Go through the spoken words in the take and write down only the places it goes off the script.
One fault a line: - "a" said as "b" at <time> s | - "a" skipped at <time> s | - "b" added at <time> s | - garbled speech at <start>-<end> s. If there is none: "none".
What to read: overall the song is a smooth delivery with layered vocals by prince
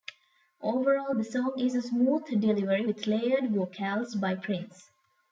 none